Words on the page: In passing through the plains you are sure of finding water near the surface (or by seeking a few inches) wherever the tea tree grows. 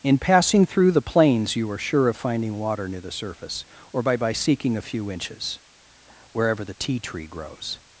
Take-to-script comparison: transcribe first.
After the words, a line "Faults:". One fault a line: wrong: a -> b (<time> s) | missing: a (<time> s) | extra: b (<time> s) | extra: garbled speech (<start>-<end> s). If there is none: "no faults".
In passing through the plains you are sure of finding water near the surface (or by by seeking a few inches) wherever the tea tree grows.
Faults:
extra: by (4.2 s)